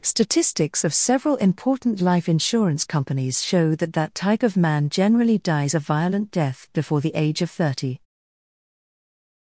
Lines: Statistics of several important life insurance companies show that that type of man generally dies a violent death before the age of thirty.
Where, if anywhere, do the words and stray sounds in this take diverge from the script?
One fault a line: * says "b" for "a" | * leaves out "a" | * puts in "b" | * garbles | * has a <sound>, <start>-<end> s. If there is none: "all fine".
all fine